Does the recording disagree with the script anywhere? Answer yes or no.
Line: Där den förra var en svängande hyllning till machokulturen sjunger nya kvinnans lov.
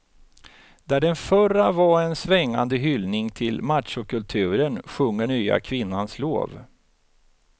no